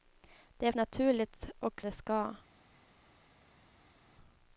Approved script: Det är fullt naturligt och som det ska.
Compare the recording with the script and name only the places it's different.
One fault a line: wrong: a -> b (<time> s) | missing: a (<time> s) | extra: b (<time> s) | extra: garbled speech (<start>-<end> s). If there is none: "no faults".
missing: fullt (0.7 s)
missing: som (1.8 s)